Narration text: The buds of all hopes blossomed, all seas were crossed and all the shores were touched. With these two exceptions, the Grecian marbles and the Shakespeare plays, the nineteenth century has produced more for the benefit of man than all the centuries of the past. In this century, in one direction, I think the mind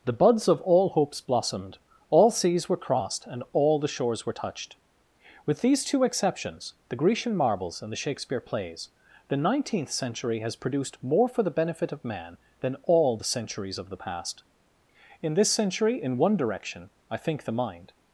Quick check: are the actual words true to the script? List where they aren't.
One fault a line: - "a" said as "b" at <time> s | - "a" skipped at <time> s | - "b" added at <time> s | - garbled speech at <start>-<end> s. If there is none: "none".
none